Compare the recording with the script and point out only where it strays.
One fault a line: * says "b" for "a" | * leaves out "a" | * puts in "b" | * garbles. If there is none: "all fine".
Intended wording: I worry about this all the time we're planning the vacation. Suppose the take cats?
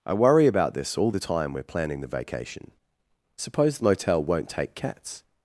* puts in "motel won't"